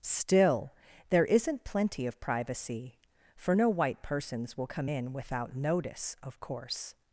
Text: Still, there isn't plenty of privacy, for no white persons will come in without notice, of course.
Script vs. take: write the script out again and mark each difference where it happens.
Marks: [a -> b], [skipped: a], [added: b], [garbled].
Still, there isn't plenty of privacy, for no white persons will come in without notice, of course.